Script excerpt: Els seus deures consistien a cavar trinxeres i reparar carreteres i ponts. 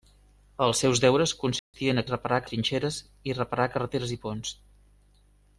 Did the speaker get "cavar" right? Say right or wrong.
wrong